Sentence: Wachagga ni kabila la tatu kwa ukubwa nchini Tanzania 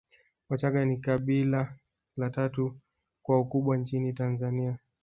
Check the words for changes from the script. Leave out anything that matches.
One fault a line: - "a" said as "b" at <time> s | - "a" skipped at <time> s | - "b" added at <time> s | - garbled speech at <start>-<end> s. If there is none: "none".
none